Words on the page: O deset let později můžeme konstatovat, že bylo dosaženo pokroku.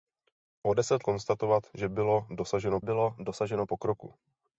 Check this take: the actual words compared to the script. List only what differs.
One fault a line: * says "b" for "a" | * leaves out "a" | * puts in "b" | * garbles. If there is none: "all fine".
* says "konstatovat že bylo dosaženo" for "let později můžeme konstatovat že"